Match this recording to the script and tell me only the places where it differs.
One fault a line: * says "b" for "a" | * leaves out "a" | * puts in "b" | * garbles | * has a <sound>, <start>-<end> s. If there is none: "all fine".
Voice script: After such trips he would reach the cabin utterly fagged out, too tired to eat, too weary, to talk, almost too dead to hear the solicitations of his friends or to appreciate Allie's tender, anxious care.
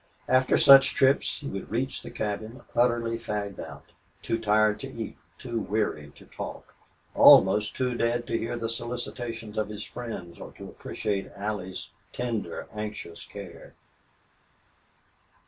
all fine